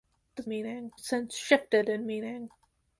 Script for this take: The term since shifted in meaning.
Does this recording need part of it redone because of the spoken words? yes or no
yes